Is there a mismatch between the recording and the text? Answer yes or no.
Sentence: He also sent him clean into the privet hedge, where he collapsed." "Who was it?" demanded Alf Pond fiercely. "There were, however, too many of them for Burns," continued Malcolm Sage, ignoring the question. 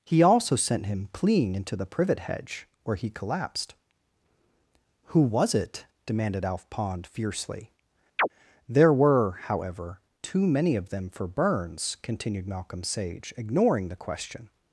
yes